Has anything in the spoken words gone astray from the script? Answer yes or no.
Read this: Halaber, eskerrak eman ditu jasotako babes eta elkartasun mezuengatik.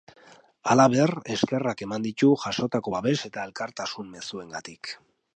no